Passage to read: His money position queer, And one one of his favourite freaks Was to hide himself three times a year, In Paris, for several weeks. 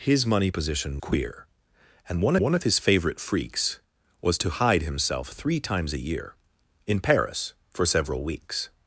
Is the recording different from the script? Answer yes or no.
no